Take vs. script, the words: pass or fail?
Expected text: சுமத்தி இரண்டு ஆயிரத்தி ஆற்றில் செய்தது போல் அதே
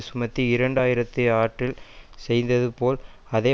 pass